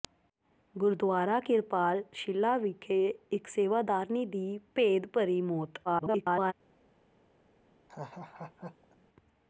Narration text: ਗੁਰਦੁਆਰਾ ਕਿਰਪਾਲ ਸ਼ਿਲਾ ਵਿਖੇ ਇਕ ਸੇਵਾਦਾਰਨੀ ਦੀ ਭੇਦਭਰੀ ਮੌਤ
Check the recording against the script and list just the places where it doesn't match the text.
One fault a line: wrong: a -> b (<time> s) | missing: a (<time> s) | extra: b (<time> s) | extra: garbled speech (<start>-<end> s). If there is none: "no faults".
extra: garbled speech (5.8-6.5 s)